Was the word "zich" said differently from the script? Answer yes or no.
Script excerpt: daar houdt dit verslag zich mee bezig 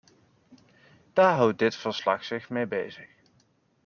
no